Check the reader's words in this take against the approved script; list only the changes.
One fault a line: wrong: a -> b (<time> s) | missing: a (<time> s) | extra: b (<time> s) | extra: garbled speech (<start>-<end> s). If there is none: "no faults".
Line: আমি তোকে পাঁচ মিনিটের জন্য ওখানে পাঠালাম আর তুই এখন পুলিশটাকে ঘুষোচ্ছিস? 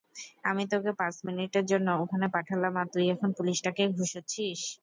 no faults